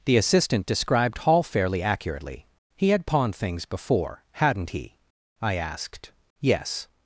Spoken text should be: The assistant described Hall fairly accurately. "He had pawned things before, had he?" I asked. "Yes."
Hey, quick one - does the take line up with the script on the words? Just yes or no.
no